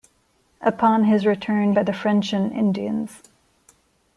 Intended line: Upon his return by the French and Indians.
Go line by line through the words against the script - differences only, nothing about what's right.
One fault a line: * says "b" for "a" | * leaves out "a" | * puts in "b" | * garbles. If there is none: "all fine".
all fine